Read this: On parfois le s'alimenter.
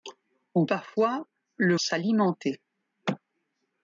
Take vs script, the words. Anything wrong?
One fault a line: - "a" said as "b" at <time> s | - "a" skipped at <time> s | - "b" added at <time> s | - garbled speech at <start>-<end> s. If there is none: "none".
none